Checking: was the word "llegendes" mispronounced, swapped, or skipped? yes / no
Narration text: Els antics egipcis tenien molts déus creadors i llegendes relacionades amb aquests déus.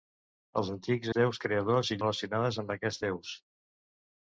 yes